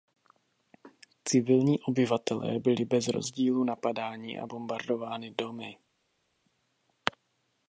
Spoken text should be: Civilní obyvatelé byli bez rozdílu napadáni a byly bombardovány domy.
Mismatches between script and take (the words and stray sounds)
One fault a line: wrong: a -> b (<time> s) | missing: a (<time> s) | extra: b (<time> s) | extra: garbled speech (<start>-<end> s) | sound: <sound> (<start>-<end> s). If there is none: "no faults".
missing: byly (4.5 s)